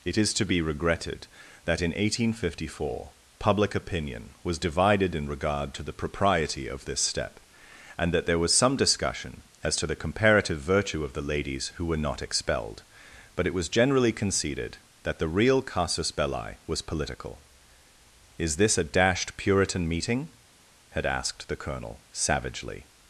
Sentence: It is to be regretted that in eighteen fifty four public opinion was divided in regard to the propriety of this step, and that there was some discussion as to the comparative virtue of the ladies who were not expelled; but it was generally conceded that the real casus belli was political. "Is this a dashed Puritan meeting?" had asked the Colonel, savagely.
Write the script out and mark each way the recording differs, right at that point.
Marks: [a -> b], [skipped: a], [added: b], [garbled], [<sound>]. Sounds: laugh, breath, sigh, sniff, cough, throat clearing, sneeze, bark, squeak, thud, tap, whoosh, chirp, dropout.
It is to be regretted that in eighteen fifty four public opinion was divided in regard to the propriety of this step, and that there was some discussion as to the comparative virtue of the ladies who were not expelled; but it was generally conceded that the real casus belli was political. "Is this a dashed Puritan meeting?" had asked the Colonel, savagely.